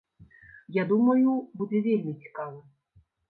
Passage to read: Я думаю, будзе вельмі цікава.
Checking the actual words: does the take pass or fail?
pass